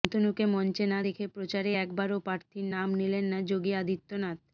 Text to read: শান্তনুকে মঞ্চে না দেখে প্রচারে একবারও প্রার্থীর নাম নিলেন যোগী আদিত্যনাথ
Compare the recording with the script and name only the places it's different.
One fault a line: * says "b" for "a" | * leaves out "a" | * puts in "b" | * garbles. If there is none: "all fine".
* puts in "না"